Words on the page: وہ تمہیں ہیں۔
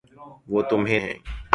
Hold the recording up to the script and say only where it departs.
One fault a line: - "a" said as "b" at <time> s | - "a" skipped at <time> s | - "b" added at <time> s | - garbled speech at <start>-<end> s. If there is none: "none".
none